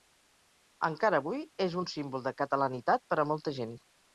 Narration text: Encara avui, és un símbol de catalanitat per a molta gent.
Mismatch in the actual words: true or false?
false